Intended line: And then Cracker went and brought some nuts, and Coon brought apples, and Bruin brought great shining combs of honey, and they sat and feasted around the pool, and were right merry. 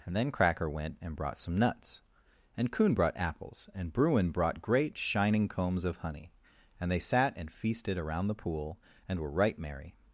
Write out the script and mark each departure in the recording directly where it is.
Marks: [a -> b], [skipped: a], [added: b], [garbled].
And then Cracker went and brought some nuts, and Coon brought apples, and Bruin brought great shining combs of honey, and they sat and feasted around the pool, and were right merry.